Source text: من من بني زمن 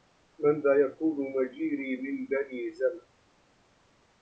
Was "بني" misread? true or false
false